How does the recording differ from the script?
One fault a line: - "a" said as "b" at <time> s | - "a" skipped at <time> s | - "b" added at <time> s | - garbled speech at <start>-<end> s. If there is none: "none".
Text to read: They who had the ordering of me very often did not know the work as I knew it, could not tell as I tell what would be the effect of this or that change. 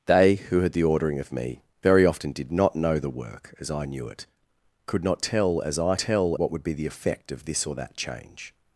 none